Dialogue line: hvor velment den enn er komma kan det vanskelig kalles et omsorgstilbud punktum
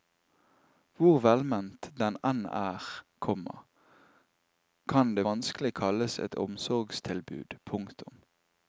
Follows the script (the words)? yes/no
yes